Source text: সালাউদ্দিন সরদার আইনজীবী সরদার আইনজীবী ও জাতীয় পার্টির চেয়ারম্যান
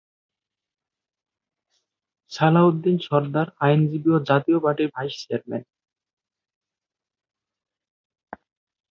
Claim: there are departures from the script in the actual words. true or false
true